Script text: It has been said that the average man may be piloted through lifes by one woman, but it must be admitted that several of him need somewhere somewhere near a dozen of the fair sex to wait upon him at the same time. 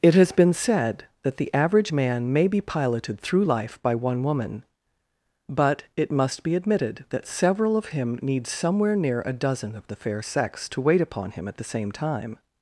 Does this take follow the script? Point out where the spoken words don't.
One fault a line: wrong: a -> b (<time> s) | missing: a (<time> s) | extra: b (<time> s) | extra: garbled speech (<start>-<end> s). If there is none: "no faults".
wrong: lifes -> life (3.4 s)
missing: somewhere (9.0 s)